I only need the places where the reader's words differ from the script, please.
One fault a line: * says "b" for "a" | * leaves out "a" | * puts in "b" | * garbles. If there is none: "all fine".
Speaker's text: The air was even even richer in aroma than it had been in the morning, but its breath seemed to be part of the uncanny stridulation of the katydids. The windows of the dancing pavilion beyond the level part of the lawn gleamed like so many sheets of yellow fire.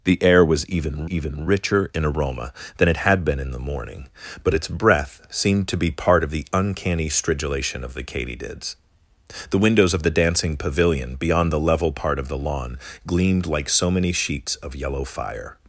all fine